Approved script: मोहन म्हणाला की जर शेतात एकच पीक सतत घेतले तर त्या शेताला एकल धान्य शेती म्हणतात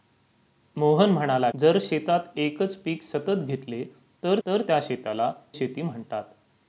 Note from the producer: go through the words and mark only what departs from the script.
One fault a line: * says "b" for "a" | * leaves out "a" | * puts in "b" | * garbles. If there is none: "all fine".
* leaves out "की"
* puts in "तर"
* leaves out "एकल धान्य"